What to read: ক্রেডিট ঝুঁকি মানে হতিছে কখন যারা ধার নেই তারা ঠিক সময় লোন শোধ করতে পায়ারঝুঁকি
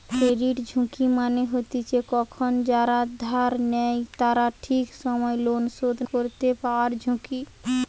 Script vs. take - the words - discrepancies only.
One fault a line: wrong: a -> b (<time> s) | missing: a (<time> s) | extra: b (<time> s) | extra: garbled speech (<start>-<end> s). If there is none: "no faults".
no faults